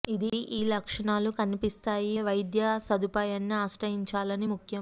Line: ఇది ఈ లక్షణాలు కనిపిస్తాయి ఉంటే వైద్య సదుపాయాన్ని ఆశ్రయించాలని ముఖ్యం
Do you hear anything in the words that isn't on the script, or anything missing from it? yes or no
yes